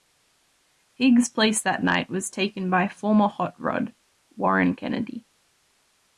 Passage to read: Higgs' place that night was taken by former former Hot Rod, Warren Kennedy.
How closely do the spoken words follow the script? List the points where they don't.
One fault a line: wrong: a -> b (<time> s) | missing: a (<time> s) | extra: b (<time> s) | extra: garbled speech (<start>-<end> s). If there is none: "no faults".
missing: former (3.3 s)